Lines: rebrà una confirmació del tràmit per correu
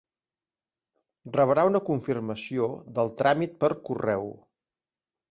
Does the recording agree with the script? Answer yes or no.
yes